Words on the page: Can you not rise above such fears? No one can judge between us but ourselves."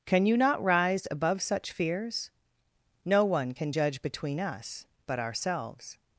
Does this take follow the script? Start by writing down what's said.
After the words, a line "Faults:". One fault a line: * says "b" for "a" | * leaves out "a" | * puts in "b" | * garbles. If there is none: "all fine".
Can you not rise above such fears? No one can judge between us but ourselves."
Faults:
all fine